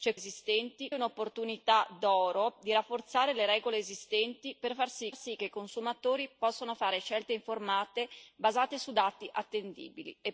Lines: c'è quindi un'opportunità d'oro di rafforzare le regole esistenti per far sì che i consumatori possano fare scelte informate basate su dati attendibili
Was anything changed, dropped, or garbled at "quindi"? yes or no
yes